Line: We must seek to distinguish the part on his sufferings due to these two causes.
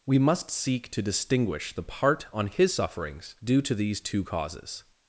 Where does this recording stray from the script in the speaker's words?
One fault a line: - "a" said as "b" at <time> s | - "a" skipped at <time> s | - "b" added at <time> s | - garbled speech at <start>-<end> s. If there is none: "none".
none